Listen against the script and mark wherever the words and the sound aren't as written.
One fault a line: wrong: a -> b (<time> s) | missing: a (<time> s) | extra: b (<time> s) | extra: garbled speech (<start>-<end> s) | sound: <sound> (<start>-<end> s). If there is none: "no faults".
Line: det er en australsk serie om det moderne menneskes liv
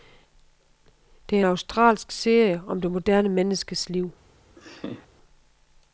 sound: laugh (4.6-5.1 s)